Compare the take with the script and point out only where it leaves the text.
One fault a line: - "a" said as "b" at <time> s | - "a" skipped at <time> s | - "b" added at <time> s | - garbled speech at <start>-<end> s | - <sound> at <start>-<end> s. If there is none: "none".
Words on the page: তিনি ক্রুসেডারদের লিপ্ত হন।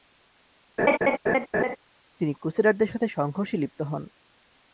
- laugh at 0.8-1.8 s
- "সাথে সংঘর্ষে" added at 2.9 s